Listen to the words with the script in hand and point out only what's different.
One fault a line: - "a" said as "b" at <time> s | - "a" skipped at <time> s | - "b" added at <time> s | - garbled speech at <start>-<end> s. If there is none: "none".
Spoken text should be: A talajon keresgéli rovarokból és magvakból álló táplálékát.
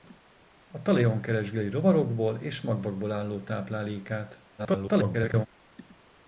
- garbled speech at 4.6-5.5 s